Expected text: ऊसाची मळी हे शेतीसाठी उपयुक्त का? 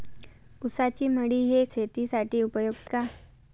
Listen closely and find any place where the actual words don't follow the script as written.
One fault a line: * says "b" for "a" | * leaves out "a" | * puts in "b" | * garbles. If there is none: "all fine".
all fine